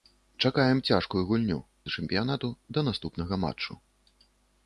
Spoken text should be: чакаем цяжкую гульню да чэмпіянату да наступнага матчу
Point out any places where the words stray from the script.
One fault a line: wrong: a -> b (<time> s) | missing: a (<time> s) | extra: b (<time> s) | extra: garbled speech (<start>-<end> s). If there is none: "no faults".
no faults